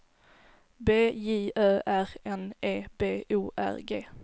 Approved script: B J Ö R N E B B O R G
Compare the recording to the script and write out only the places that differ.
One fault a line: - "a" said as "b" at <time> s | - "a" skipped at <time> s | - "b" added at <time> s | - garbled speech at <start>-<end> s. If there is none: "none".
- "B" skipped at 3.2 s